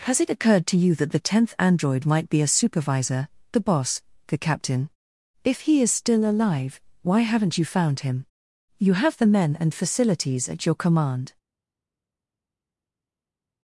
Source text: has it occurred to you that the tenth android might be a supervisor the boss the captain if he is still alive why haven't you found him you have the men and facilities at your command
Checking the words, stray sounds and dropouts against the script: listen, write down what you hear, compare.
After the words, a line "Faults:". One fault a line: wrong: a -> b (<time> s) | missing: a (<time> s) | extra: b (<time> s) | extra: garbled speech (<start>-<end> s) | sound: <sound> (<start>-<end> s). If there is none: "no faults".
has it occurred to you that the tenth android might be a supervisor the boss the captain if he is still alive why haven't you found him you have the men and facilities at your command
Faults:
no faults